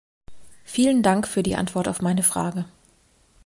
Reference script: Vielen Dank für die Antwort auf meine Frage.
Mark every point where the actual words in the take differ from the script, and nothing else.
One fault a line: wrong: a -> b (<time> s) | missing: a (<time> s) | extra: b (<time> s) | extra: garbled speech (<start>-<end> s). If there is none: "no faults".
no faults